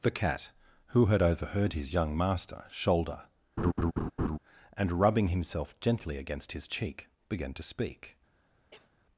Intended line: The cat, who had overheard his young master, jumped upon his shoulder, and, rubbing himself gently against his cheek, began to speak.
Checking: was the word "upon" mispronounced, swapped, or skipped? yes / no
yes